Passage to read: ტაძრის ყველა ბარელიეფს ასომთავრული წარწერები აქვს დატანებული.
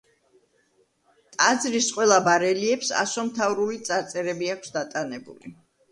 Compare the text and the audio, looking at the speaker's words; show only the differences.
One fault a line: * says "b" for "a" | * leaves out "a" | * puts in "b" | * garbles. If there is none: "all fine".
all fine